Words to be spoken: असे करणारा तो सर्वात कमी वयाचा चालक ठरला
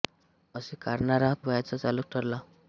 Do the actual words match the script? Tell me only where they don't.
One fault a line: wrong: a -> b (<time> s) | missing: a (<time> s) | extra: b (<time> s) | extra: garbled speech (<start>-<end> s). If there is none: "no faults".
missing: तो सर्वात कमी (1.3 s)